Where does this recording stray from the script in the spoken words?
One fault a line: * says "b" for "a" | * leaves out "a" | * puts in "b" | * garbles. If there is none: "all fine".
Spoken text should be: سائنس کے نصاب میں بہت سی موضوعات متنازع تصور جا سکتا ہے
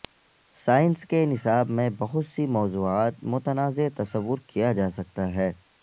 * puts in "کیا"